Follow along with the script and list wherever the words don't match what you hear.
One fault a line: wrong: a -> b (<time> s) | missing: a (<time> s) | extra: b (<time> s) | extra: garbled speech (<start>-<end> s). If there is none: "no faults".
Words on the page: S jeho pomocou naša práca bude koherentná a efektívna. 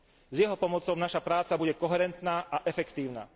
no faults